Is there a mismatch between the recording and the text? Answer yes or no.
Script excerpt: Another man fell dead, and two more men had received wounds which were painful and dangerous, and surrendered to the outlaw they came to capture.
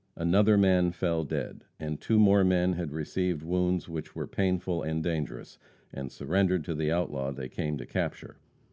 no